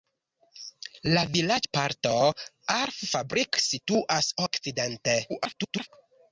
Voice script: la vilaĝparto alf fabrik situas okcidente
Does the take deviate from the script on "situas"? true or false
false